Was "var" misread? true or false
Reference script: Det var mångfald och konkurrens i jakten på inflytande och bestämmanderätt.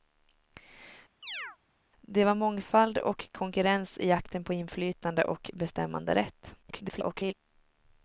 false